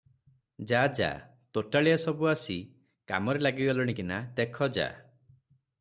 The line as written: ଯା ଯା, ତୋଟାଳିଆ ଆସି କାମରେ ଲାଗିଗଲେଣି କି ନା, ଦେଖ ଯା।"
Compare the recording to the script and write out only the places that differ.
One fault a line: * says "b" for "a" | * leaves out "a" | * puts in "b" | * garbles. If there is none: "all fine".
* puts in "ସବୁ"